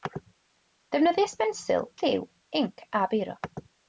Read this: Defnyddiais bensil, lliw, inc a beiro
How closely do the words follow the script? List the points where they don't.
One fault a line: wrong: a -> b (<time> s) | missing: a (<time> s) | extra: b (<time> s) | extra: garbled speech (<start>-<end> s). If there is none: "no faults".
no faults